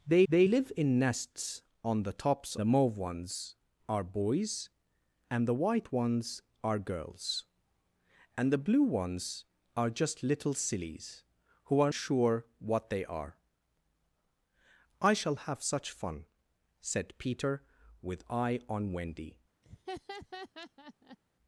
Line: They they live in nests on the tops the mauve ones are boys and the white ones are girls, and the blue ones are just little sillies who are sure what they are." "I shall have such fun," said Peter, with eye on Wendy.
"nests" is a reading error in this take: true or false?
false